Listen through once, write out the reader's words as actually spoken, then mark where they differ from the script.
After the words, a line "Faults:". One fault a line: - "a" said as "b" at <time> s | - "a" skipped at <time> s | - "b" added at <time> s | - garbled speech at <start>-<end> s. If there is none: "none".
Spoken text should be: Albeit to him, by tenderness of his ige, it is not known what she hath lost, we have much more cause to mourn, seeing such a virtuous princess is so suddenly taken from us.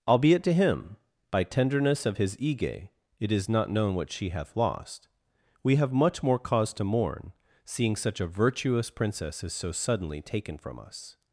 Albeit to him, by tenderness of his ige, it is not known what she hath lost, we have much more cause to mourn, seeing such a virtuous princess is so suddenly taken from us.
Faults:
none